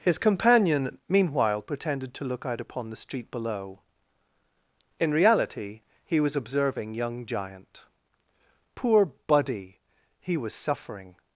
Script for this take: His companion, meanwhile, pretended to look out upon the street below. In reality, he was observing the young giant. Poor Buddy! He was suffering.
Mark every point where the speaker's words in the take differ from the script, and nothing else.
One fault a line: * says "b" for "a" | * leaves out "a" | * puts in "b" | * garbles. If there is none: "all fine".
* leaves out "the"